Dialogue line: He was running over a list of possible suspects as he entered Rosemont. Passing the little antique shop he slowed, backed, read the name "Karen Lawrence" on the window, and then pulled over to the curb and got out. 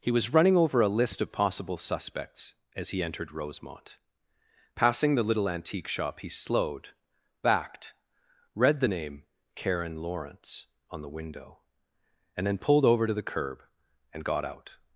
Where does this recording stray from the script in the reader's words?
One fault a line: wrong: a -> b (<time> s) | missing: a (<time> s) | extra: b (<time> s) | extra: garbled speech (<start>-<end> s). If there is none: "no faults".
no faults